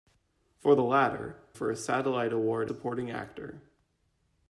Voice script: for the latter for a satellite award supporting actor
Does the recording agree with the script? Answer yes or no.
yes